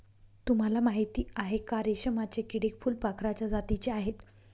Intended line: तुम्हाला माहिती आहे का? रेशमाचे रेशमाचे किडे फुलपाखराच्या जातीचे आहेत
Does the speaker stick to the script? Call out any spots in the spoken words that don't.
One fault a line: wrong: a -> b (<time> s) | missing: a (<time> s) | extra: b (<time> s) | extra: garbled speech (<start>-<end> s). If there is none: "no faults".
missing: रेशमाचे (2.4 s)